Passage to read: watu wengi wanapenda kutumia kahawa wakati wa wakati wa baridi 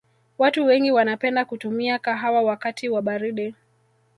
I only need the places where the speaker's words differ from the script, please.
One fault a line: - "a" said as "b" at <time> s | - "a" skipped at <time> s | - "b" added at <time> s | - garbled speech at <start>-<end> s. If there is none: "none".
- "wakati wa" skipped at 3.0 s